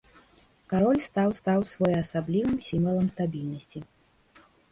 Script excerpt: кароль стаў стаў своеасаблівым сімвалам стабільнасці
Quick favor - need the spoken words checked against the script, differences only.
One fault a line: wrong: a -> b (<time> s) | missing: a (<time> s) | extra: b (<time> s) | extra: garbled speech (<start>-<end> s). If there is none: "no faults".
no faults